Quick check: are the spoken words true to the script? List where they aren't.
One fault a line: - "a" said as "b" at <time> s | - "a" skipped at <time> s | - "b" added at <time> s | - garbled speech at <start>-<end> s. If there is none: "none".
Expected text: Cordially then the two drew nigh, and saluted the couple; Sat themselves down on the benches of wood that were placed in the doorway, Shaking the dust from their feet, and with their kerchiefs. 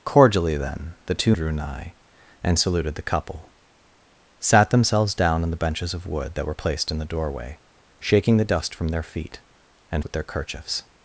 none